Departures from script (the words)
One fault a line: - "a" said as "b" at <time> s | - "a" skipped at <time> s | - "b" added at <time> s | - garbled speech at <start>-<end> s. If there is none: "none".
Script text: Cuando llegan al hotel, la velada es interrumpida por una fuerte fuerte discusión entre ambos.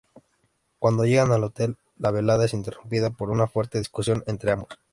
- "fuerte" skipped at 3.8 s